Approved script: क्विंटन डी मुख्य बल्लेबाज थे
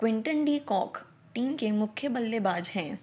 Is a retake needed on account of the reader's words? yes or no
yes